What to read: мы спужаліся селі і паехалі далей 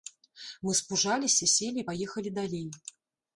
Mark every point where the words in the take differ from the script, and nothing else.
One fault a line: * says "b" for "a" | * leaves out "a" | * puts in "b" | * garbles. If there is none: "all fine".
all fine